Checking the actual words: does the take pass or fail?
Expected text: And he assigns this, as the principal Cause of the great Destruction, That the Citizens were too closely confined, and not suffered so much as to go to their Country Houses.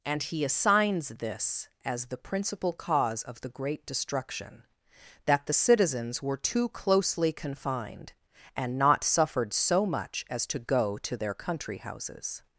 pass